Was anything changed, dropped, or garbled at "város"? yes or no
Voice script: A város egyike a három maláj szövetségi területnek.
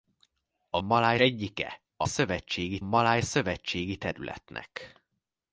yes